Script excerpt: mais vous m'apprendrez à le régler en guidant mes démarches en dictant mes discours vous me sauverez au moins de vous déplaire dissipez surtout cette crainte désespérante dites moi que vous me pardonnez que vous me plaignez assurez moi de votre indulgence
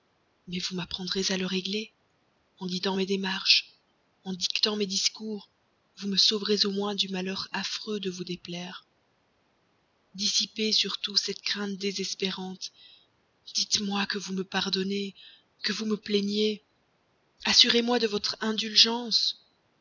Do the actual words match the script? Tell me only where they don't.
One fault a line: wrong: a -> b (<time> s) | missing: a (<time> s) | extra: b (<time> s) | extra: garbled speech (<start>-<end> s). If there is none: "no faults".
extra: du malheur affreux (6.9 s)